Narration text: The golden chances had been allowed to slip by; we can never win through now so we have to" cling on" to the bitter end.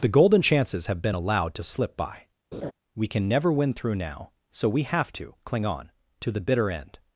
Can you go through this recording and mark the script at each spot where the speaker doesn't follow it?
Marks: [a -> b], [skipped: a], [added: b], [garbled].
The golden chances [had -> have] been allowed to slip by; we can never win through now so we have to" cling on" to the bitter end.